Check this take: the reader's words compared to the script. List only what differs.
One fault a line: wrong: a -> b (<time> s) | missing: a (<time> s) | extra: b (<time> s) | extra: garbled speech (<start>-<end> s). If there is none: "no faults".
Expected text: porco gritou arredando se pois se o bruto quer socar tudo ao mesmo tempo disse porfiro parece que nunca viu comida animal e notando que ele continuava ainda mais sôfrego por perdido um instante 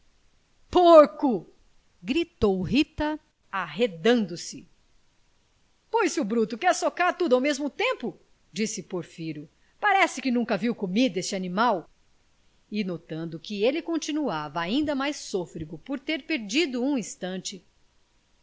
extra: rita (2.6 s)
extra: este (11.2 s)
extra: ter (16.0 s)